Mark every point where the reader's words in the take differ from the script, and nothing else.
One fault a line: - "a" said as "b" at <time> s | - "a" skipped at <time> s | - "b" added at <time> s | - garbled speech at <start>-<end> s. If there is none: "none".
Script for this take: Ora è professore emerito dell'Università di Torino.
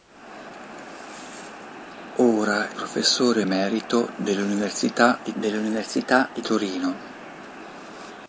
- "è" skipped at 2.7 s
- "dell'Università di" added at 5.3 s